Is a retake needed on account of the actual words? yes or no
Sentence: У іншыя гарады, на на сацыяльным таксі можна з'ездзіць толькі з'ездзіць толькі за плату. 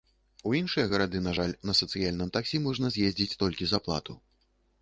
yes